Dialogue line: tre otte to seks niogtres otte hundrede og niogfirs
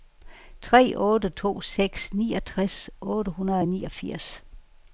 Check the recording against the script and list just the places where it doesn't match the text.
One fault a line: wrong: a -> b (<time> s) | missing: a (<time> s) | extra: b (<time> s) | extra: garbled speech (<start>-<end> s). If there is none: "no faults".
no faults